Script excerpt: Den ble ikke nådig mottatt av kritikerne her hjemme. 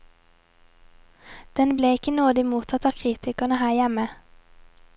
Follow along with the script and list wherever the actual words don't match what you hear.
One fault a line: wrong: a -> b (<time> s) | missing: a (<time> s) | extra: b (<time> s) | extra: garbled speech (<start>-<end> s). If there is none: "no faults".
no faults